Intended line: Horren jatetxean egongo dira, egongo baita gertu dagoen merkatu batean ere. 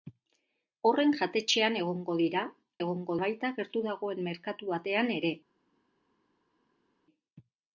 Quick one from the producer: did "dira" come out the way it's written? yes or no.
yes